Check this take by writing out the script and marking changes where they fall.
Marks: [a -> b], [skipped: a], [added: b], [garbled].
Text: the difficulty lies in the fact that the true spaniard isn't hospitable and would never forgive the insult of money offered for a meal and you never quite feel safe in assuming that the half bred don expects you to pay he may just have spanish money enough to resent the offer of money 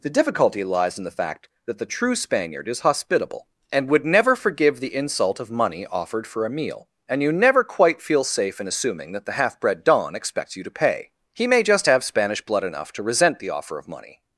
the difficulty lies in the fact that the true spaniard [isn't -> is] hospitable and would never forgive the insult of money offered for a meal and you never quite feel safe in assuming that the half bred don expects you to pay he may just have spanish [money -> blood] enough to resent the offer of money